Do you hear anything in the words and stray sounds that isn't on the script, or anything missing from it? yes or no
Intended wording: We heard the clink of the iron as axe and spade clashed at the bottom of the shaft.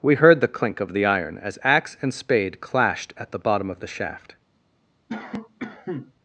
yes